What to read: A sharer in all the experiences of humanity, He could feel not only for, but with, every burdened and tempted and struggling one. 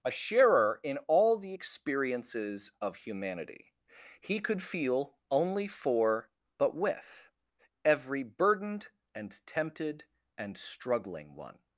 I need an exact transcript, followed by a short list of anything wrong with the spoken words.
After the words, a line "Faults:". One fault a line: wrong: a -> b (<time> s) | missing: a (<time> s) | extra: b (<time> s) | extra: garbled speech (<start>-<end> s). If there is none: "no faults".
A sharer in all the experiences of humanity, He could feel only for, but with, every burdened and tempted and struggling one.
Faults:
missing: not (5.2 s)